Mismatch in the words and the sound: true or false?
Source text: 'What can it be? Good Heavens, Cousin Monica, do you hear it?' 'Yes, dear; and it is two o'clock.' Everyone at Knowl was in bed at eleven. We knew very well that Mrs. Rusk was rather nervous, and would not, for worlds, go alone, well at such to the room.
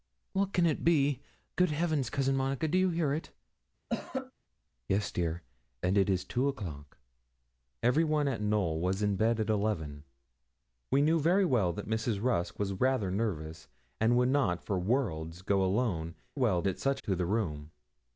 true